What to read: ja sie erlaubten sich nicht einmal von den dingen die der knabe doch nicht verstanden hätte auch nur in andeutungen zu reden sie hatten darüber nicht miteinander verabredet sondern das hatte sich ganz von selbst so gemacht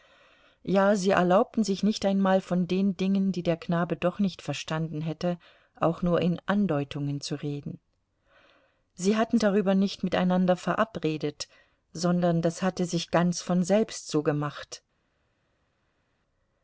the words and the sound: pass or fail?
pass